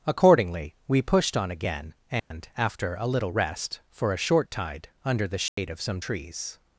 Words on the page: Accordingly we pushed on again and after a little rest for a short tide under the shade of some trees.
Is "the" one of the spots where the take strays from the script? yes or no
no